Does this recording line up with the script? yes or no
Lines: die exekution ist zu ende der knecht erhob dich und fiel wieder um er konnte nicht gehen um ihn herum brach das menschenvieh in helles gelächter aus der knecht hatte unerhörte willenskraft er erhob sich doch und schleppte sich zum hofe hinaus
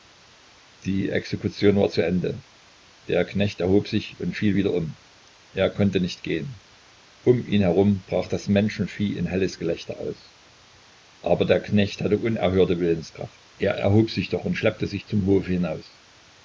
no